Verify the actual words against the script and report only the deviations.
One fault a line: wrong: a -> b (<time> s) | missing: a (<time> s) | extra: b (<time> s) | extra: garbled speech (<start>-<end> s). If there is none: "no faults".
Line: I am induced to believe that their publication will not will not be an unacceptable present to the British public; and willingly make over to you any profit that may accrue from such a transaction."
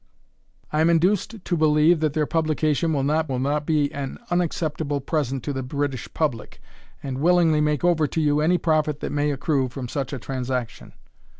no faults